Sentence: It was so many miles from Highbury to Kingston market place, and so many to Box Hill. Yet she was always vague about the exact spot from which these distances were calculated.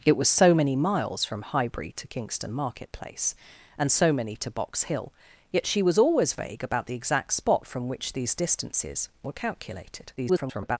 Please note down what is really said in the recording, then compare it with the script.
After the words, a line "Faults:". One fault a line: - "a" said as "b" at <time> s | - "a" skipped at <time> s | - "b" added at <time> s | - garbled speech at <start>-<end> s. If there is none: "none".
It was so many miles from Highbury to Kingston market place, and so many to Box Hill. Yet she was always vague about the exact spot from which these distances were calculated. [garbled]
Faults:
- garbled speech at 10.2-10.8 s